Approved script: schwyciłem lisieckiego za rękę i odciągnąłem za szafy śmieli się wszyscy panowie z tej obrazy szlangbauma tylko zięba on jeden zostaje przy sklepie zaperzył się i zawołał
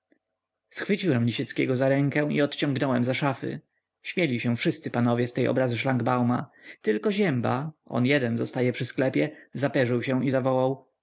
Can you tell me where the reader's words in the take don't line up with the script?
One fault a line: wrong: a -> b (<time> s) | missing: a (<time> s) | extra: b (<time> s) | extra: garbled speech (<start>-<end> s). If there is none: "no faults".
no faults